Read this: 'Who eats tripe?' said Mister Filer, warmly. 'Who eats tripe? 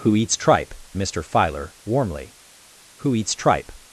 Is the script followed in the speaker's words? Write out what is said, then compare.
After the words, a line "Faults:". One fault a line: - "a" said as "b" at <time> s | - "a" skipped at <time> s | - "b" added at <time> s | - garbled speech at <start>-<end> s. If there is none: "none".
'Who eats tripe?' Mister Filer, warmly. 'Who eats tripe?
Faults:
- "said" skipped at 0.7 s